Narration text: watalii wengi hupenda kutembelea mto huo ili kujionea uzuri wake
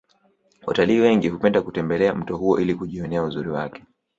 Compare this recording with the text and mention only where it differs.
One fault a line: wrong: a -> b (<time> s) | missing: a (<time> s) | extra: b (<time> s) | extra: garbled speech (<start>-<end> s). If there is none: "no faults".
no faults